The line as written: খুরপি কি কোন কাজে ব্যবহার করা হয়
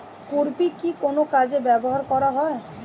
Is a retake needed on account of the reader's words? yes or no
no